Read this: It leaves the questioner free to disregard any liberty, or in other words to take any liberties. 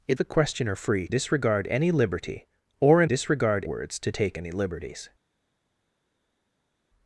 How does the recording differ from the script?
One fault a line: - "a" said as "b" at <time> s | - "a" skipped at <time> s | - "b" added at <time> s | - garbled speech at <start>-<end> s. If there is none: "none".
- "leaves" skipped at 0.2 s
- "to" skipped at 1.1 s
- "other" said as "disregard" at 3.0 s